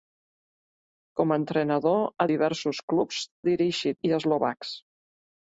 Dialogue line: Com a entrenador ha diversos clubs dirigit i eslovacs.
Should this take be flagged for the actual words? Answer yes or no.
no